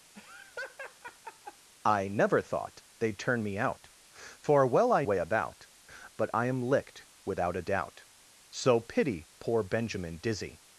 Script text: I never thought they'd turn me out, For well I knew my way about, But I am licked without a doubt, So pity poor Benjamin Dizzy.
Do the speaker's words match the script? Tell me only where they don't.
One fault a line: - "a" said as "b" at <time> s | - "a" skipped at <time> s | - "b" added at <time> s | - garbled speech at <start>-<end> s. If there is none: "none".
- "knew my" skipped at 5.0 s